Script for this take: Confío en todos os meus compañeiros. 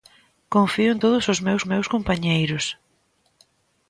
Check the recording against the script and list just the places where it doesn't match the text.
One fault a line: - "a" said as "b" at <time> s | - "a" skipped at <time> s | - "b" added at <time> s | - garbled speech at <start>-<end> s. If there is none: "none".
- "meus" added at 1.7 s